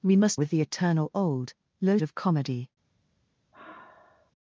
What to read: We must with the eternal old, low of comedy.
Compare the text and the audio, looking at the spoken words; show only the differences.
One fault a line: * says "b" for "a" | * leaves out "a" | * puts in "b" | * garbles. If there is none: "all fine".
all fine